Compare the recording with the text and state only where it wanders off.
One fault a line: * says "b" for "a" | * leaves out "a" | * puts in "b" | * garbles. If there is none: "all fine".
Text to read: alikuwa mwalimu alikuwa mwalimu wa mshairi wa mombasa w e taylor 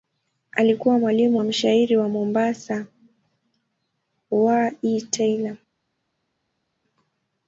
* leaves out "alikuwa mwalimu"